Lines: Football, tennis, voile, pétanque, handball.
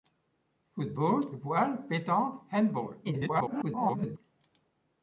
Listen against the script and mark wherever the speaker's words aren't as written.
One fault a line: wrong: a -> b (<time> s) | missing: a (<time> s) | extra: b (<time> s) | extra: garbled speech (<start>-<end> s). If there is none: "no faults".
missing: tennis (1.3 s)
extra: garbled speech (3.0-4.2 s)